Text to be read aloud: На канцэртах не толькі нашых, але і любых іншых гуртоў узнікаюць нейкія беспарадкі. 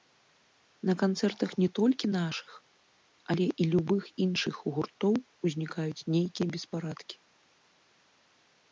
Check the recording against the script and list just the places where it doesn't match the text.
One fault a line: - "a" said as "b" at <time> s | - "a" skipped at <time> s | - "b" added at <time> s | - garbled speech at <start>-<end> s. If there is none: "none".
none